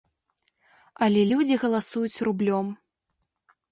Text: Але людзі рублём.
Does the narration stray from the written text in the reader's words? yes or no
yes